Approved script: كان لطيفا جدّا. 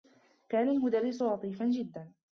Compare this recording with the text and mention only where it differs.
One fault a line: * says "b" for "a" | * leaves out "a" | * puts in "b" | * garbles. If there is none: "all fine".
* puts in "المدرّس"